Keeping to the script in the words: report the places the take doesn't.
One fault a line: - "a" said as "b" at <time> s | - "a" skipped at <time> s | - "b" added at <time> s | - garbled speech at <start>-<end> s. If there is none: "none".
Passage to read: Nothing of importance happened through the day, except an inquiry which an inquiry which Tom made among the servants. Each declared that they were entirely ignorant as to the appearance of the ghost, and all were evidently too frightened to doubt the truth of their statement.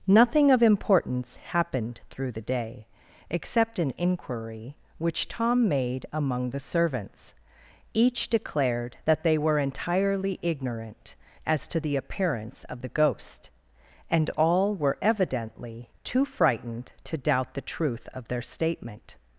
- "an inquiry which" skipped at 5.3 s